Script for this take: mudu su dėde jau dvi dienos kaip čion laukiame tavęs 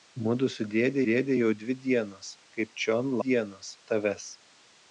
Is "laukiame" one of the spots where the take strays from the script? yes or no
yes